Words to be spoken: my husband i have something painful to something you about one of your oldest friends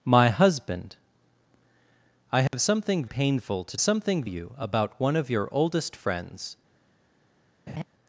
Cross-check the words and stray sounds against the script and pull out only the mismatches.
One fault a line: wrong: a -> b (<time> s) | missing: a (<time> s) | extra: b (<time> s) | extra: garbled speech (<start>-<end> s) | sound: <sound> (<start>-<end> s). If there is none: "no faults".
sound: dropout (2.5-2.5 s)
sound: laugh (7.7-7.8 s)